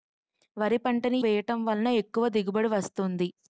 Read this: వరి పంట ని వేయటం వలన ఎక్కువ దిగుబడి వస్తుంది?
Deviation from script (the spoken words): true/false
false